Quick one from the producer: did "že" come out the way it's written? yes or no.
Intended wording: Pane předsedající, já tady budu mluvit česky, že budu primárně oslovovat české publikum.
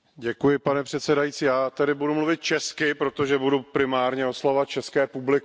no